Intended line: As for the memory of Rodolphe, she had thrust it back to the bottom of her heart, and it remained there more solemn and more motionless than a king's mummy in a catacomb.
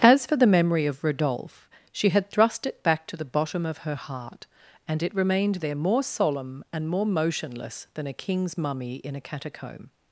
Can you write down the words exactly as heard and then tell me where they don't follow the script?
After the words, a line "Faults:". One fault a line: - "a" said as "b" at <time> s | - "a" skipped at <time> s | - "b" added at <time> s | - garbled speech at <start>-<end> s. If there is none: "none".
As for the memory of Rodolphe, she had thrust it back to the bottom of her heart, and it remained there more solemn and more motionless than a king's mummy in a catacomb.
Faults:
none